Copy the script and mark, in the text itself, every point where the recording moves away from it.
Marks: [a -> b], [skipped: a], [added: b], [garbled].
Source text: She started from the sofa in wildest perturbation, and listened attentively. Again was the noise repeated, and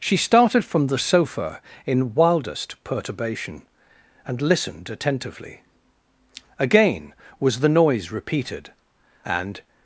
She started from the sofa in wildest perturbation, and listened attentively. Again was the noise repeated, and